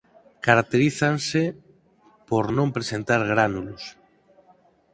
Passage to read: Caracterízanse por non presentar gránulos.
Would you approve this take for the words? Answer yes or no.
yes